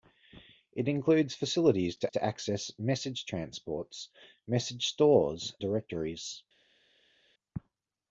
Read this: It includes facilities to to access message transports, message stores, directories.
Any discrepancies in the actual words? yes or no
no